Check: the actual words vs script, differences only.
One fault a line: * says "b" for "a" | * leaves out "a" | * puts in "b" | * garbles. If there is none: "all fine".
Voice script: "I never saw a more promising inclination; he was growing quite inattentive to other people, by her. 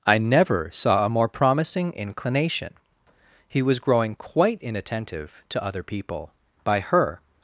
all fine